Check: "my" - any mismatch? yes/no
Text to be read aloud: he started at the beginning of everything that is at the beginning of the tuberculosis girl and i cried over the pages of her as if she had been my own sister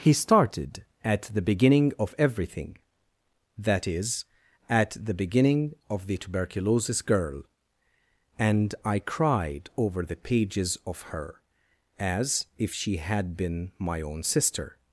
no